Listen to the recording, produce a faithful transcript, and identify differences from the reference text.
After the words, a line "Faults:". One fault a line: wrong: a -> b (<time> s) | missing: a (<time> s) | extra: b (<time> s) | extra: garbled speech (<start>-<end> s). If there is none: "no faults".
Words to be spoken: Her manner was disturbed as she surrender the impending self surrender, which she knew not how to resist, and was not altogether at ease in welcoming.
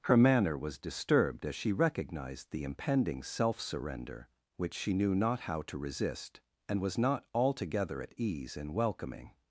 Her manner was disturbed as she recognized the impending self surrender, which she knew not how to resist, and was not altogether at ease in welcoming.
Faults:
wrong: surrender -> recognized (1.7 s)